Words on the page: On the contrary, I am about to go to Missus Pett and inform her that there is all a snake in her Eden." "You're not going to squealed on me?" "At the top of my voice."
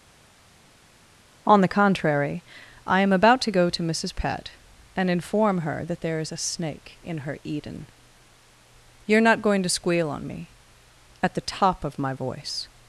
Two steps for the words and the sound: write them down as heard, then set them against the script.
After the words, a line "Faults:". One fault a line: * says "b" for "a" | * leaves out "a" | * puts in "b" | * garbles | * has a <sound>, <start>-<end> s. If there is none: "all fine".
On the contrary, I am about to go to Missus Pett and inform her that there is a snake in her Eden." "You're not going to squeal on me?" "At the top of my voice."
Faults:
* leaves out "all"
* says "squeal" for "squealed"